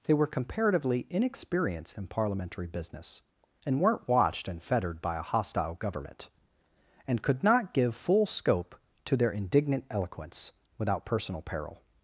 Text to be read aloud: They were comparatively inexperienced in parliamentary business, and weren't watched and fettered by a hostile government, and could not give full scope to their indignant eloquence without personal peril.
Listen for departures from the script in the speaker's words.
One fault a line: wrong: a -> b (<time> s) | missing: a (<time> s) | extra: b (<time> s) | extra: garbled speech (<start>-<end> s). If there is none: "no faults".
no faults